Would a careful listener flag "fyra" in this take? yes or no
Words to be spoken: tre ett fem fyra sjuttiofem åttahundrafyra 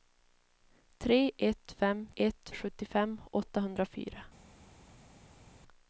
yes